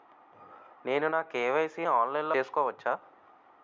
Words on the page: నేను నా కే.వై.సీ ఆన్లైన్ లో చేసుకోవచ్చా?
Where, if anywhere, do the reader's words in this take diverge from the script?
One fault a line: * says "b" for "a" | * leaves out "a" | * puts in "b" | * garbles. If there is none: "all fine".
all fine